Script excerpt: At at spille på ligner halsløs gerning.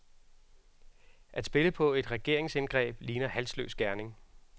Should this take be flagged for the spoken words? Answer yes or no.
yes